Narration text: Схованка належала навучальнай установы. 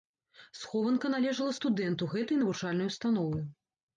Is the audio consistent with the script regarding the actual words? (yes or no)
no